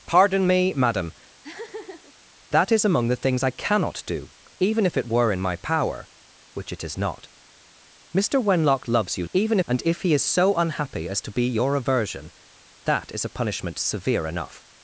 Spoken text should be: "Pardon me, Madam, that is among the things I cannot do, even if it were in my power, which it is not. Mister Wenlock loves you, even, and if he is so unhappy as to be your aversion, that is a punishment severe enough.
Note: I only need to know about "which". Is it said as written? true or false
true